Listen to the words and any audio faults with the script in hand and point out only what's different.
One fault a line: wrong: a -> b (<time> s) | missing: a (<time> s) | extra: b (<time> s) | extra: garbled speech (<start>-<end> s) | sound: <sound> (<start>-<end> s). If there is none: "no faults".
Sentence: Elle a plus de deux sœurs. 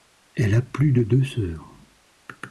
no faults